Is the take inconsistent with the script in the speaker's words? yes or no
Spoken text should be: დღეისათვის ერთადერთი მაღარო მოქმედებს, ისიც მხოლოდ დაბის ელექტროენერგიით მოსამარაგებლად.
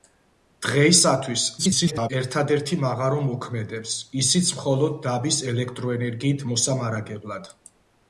yes